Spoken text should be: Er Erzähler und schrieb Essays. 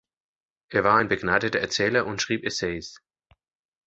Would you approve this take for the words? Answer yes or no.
no